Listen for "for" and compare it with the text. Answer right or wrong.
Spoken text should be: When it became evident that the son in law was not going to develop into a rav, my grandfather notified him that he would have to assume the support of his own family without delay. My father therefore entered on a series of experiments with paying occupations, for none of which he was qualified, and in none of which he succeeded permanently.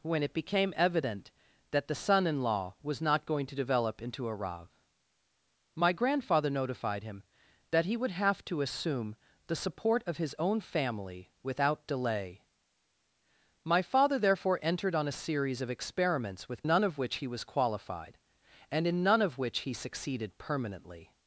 wrong